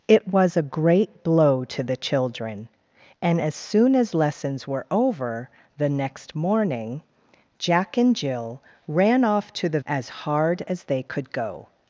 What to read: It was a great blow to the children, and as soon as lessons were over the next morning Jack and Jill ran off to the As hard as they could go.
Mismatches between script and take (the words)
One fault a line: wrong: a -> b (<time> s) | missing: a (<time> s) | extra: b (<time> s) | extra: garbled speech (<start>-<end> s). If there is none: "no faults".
no faults